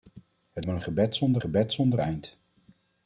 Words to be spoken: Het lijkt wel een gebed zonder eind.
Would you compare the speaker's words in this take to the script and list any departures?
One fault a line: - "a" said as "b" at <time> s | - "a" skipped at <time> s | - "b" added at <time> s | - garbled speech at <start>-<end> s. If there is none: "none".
- "lijkt" skipped at 0.7 s
- "gebed zonder" added at 1.4 s